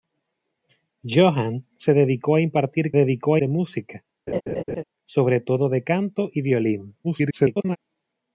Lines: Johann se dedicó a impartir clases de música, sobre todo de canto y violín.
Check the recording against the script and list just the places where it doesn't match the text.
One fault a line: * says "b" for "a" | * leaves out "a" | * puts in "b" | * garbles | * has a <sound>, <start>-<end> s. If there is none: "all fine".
* says "dedicó" for "clases"
* has a laugh, 4.3-4.8 s
* garbles